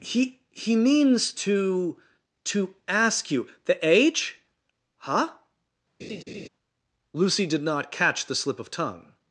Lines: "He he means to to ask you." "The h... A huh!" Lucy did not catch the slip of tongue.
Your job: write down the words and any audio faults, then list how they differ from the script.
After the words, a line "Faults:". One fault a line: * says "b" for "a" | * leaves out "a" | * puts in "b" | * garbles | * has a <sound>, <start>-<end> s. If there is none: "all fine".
"He he means to to ask you." "The age huh!" Lucy did not catch the slip of tongue.
Faults:
* says "age" for "h A"
* has a laugh, 6.0-6.5 s